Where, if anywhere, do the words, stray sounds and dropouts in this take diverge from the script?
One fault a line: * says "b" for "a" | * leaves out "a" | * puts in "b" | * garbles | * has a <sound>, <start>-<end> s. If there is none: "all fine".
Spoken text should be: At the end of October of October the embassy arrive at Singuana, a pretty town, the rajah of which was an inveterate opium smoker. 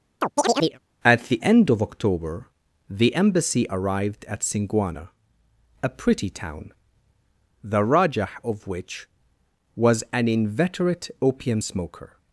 * has a chirp, 0.2-0.8 s
* leaves out "of October"
* says "arrived" for "arrive"